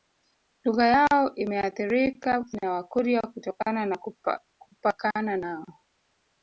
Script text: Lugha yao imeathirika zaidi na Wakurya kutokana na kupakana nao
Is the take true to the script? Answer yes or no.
no